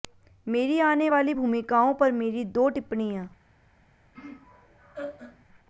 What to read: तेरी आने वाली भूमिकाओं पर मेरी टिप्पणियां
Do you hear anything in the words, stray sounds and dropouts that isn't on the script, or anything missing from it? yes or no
yes